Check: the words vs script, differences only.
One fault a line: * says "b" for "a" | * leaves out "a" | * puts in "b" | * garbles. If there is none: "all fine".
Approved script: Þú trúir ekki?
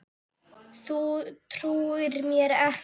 * puts in "mér"